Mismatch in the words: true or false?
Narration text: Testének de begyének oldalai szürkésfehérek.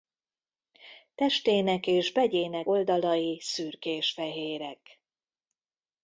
true